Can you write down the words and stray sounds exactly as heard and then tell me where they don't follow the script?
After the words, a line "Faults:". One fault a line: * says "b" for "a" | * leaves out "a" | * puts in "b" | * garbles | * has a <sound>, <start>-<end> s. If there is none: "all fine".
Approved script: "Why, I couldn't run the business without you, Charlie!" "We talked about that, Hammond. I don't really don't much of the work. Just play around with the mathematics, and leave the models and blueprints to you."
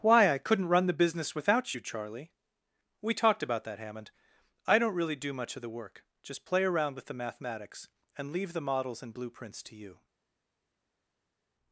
"Why, I couldn't run the business without you, Charlie!" "We talked about that, Hammond. I don't really do much of the work. Just play around with the mathematics, and leave the models and blueprints to you."
Faults:
* says "do" for "don't"